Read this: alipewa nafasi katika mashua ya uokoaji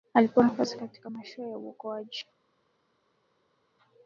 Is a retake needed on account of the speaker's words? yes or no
no